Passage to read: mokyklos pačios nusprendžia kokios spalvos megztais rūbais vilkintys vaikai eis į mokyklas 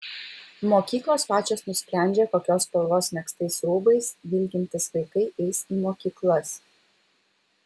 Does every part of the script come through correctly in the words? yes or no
yes